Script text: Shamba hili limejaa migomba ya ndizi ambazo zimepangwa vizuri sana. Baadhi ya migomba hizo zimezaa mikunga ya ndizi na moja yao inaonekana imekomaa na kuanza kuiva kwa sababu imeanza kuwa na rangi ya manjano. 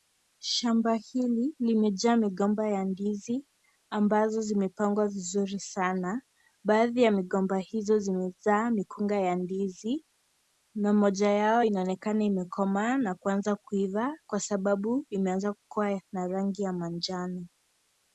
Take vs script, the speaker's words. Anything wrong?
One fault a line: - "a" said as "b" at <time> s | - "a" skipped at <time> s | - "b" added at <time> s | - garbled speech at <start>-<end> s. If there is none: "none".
none